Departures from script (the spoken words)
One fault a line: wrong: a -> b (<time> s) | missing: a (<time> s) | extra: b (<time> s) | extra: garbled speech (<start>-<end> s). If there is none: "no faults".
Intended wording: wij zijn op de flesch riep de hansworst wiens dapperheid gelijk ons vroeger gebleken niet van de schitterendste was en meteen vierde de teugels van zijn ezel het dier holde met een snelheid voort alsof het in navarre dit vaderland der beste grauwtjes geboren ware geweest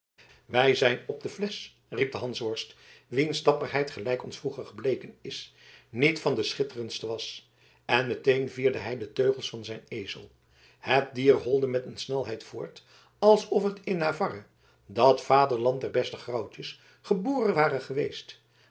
extra: is (5.2 s)
extra: hij (8.8 s)
wrong: dit -> dat (14.8 s)